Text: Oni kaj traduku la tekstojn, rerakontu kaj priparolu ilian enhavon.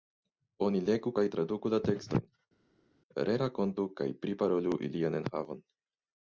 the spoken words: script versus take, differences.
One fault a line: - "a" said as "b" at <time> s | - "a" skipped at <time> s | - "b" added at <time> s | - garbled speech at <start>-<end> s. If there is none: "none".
- "legu" added at 0.9 s